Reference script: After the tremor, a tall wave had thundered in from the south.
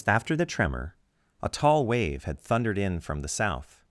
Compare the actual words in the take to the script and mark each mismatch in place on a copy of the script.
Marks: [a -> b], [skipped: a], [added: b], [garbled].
After the tremor, a tall wave had thundered in from the south.